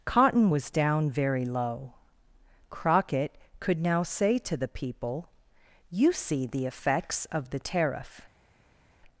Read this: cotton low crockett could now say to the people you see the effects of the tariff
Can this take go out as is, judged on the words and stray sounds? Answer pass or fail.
fail